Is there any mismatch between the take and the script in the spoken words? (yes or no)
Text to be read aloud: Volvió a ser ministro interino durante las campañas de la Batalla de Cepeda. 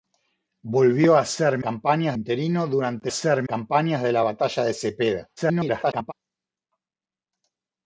yes